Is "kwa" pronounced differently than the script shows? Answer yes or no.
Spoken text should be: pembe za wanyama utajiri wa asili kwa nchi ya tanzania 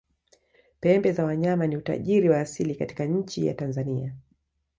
yes